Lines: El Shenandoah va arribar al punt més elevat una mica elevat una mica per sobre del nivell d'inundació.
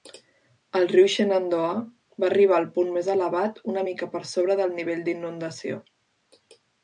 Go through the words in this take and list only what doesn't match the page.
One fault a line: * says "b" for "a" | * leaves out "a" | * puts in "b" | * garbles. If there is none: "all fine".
* puts in "riu"
* leaves out "elevat una mica"